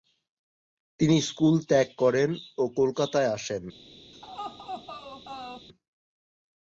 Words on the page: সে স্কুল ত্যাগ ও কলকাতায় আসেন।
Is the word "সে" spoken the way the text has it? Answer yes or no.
no